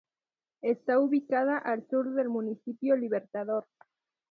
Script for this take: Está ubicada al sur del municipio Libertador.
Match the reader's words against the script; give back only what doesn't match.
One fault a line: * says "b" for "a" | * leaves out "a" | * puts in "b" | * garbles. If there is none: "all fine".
all fine